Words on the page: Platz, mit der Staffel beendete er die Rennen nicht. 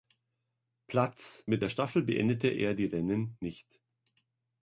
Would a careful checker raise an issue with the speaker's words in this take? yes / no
no